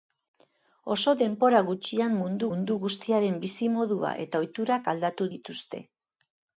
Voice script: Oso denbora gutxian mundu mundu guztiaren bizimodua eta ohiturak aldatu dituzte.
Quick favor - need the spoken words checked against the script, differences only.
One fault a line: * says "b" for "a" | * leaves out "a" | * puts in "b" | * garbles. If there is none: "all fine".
all fine